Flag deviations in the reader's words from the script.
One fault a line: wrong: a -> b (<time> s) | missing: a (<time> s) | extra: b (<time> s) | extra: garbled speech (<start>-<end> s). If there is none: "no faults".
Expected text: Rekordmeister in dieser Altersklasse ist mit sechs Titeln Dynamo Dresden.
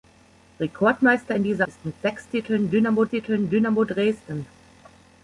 missing: Altersklasse (1.7 s)
extra: Titeln Dynamo (3.1 s)